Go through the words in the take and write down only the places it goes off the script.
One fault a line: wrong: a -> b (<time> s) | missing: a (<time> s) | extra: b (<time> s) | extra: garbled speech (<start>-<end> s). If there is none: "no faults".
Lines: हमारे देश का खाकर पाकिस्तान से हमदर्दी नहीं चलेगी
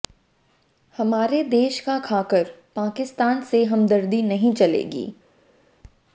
no faults